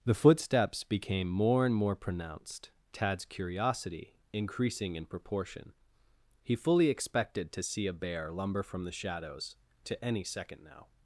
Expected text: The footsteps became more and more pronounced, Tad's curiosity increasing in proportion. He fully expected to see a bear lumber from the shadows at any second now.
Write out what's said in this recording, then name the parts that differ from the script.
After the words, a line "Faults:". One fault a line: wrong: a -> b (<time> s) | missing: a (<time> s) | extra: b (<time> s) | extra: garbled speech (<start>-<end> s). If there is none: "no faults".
The footsteps became more and more pronounced, Tad's curiosity increasing in proportion. He fully expected to see a bear lumber from the shadows to any second now.
Faults:
wrong: at -> to (9.8 s)